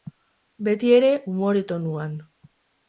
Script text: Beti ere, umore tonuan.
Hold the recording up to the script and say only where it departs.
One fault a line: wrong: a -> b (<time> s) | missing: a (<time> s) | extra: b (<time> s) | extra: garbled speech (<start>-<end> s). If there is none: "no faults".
no faults